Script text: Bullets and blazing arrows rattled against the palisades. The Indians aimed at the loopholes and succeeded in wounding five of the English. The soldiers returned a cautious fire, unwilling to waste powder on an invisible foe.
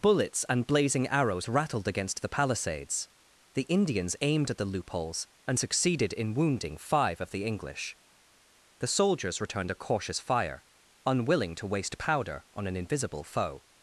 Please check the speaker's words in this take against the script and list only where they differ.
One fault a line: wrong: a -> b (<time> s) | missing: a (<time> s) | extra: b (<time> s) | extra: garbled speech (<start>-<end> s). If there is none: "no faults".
no faults